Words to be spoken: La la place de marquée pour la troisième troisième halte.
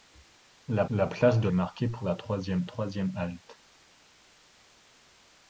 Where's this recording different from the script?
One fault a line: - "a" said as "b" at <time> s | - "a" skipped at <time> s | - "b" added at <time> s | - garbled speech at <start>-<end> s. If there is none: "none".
none